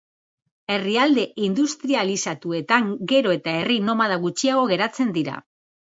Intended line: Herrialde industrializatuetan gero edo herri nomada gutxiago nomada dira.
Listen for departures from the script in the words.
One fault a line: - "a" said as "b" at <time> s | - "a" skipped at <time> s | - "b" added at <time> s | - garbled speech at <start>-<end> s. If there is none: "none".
- "edo" said as "eta" at 3.4 s
- "nomada" said as "geratzen" at 4.8 s